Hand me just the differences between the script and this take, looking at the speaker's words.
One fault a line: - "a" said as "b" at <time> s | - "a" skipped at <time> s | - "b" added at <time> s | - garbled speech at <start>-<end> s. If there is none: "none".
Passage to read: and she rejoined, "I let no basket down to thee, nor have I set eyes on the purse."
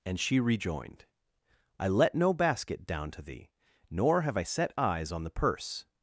none